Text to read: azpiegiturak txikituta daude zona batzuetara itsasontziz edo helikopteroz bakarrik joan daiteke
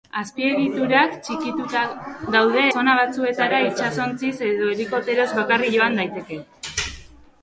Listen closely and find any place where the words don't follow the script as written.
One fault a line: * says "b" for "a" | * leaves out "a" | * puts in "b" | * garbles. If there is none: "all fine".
all fine